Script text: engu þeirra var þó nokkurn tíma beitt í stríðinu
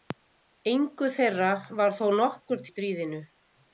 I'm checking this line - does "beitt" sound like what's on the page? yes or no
no